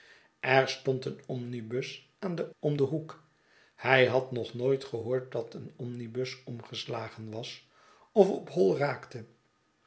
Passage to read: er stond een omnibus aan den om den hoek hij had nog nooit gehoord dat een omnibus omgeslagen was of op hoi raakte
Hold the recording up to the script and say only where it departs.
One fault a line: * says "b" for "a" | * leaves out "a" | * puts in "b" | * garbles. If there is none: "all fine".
all fine